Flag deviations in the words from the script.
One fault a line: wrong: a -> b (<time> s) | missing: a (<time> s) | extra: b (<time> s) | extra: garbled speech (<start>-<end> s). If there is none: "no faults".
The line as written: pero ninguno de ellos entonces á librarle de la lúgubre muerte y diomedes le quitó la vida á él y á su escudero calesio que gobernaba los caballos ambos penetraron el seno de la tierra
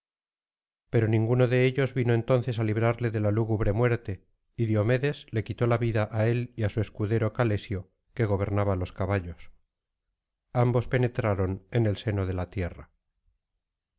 extra: vino (2.0 s)
extra: en (11.7 s)